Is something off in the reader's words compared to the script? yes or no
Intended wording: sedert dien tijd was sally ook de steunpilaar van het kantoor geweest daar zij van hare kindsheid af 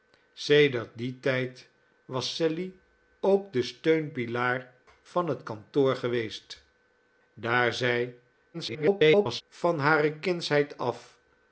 yes